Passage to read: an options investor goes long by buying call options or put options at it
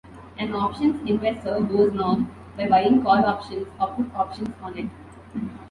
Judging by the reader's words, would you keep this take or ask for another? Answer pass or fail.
fail